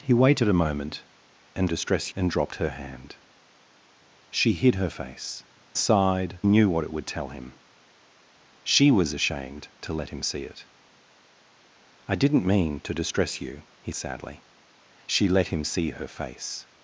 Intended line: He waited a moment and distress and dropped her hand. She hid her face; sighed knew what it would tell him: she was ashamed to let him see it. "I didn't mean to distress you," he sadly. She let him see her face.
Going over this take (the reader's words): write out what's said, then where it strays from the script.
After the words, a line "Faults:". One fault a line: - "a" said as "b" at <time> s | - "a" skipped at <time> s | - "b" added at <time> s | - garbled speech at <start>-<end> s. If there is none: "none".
He waited a moment and distress and dropped her hand. She hid her face; sighed knew what it would tell him: she was ashamed to let him see it. "I didn't mean to distress you," he sadly. She let him see her face.
Faults:
none